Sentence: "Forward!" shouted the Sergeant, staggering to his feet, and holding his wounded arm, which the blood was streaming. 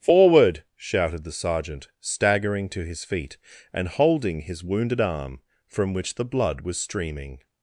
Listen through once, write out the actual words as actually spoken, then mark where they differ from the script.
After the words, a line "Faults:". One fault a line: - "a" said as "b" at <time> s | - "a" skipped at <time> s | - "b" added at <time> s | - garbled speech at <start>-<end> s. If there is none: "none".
"Forward!" shouted the Sergeant, staggering to his feet, and holding his wounded arm, from which the blood was streaming.
Faults:
- "from" added at 5.7 s